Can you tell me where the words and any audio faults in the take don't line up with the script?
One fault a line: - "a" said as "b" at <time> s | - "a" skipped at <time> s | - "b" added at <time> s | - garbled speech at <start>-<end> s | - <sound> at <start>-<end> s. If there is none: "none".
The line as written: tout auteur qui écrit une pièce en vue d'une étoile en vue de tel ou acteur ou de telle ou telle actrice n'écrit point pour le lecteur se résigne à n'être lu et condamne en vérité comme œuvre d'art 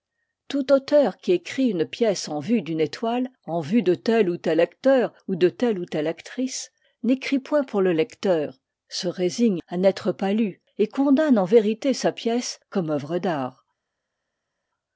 - "tel" added at 4.4 s
- "pas" added at 10.1 s
- "sa pièce" added at 11.9 s